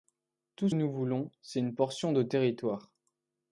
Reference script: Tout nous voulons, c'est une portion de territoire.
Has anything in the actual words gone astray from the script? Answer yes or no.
no